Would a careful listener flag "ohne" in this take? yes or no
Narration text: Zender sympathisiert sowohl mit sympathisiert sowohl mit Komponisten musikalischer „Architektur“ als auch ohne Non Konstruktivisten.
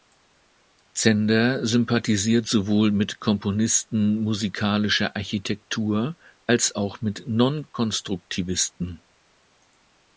yes